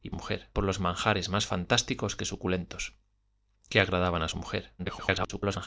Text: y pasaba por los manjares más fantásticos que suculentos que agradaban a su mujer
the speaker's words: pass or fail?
fail